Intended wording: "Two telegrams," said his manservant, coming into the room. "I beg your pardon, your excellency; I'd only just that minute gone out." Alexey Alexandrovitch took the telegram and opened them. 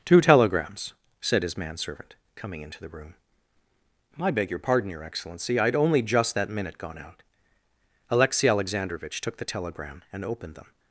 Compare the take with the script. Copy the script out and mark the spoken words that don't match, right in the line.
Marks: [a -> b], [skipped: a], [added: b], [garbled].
"Two telegrams," said his manservant, coming into the room. "I beg your pardon, your excellency; I'd only just that minute gone out." Alexey Alexandrovitch took the telegram and opened them.